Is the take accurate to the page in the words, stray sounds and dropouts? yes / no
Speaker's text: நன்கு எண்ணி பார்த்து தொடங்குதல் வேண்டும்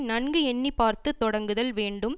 yes